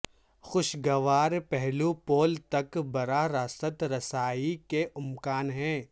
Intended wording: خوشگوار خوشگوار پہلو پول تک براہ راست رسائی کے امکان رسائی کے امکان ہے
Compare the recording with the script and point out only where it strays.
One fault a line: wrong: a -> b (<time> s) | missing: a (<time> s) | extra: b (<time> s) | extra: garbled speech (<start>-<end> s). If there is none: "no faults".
missing: خوشگوار (1.3 s)
missing: رسائی کے امکان (5.5 s)